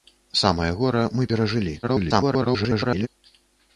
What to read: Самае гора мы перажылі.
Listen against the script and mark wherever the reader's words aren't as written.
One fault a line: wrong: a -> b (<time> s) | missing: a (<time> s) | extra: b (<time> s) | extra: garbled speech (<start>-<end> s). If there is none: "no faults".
extra: garbled speech (1.8-3.1 s)